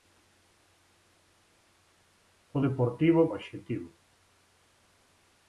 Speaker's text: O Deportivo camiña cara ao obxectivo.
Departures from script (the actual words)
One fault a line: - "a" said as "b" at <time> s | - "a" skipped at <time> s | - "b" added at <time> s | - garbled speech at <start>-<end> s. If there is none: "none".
- "camiña cara ao" skipped at 3.2 s